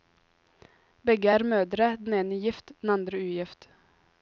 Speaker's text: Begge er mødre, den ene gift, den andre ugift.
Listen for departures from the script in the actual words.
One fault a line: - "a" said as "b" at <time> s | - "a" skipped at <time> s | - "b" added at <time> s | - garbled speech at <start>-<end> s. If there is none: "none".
none